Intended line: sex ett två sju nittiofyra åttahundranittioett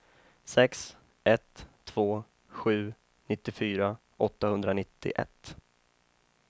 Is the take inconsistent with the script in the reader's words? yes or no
no